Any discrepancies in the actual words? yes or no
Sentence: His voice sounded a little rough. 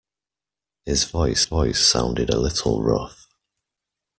yes